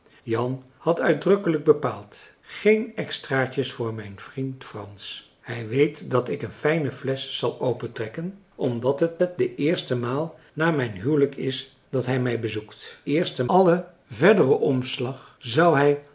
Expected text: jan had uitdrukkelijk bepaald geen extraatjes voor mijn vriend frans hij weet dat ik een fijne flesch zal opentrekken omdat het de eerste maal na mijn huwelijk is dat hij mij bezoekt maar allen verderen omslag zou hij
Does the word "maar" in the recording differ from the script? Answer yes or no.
yes